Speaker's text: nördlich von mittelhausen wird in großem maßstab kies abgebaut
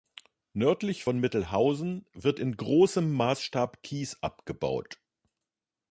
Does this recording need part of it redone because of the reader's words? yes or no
no